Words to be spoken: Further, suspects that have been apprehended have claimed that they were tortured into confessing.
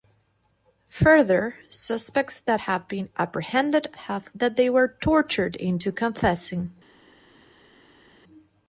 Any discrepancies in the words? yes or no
yes